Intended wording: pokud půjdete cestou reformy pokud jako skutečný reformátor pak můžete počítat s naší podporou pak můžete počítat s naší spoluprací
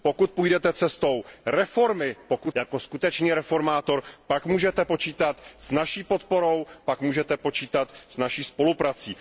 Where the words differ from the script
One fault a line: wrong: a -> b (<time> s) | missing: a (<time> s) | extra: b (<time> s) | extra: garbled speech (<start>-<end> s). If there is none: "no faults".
no faults